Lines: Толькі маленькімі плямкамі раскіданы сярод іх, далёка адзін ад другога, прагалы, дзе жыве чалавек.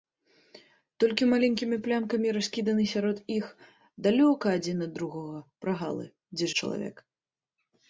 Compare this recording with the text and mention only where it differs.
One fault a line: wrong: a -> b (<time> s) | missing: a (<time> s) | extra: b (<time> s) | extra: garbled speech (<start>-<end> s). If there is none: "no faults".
missing: жыве (6.5 s)